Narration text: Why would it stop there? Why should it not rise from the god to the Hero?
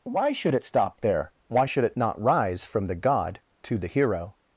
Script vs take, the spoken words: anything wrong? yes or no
yes